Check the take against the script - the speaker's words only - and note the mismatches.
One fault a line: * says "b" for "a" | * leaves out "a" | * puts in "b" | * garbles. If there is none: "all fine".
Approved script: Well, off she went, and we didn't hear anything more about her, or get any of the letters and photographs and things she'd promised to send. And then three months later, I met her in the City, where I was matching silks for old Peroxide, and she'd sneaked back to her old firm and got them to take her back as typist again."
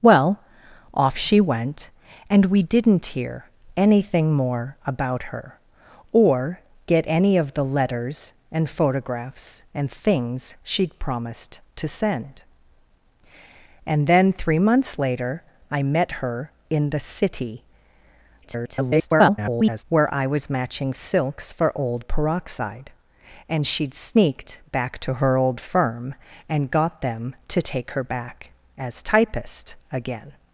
* garbles